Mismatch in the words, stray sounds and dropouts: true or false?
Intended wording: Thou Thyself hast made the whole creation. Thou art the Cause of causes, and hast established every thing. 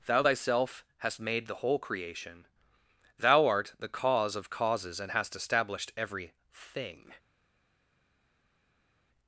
false